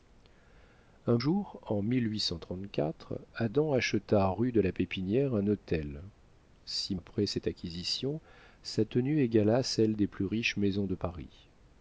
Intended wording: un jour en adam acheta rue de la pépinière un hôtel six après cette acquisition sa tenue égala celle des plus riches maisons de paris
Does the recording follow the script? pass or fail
pass